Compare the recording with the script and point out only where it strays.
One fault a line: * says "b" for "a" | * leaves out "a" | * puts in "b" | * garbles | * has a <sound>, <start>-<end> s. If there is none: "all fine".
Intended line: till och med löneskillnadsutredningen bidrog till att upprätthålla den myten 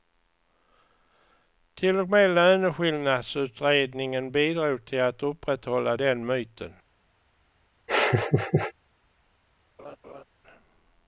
* has a laugh, 7.9-8.7 s
* has a laugh, 9.8-10.2 s